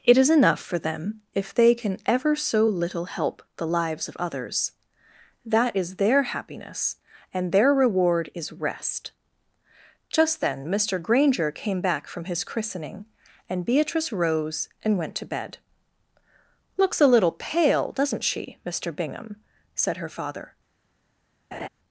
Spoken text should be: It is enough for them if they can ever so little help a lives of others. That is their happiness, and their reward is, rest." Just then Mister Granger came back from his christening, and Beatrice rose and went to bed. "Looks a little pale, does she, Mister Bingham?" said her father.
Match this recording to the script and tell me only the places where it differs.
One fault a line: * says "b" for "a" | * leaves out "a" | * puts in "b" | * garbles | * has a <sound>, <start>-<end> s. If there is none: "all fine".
* says "the" for "a"
* says "doesn't" for "does"
* has a laugh, 21.5-21.7 s